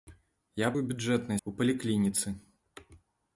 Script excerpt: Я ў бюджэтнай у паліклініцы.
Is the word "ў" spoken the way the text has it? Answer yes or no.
yes